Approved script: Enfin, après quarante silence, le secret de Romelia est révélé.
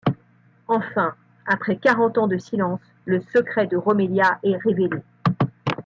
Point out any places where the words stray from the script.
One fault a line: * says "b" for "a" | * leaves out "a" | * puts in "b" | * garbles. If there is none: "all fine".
* puts in "ans de"